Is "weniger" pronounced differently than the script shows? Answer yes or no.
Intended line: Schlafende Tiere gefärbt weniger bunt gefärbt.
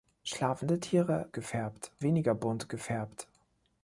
no